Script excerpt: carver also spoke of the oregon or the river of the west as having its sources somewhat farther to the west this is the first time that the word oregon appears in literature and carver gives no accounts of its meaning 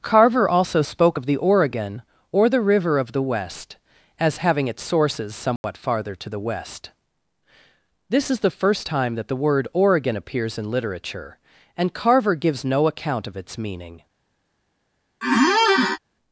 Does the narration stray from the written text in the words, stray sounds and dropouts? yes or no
yes